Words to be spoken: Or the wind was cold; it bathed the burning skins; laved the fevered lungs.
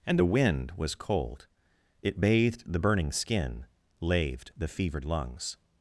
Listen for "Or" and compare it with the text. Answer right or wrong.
wrong